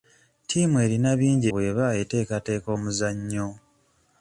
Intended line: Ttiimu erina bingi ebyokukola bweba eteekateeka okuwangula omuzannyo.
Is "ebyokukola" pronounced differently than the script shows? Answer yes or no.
yes